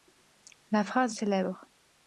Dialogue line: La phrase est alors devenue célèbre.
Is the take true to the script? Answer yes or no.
no